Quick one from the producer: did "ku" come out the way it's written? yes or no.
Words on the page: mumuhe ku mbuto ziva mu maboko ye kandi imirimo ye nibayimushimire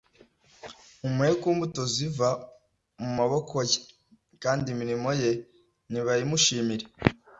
yes